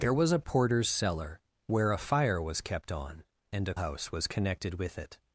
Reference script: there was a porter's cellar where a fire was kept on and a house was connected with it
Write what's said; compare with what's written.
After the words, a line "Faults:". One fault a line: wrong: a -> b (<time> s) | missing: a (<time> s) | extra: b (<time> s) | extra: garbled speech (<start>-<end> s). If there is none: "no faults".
there was a porter's cellar where a fire was kept on and a house was connected with it
Faults:
no faults